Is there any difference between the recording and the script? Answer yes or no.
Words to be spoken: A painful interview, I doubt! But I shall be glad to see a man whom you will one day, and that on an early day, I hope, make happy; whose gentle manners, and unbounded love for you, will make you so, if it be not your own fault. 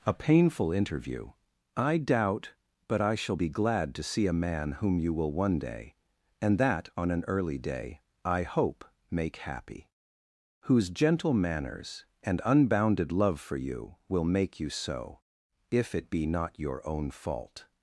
no